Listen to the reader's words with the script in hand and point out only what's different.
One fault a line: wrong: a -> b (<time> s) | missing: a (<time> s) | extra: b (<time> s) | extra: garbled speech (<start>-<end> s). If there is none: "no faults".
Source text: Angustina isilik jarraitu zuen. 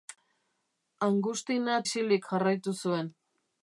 no faults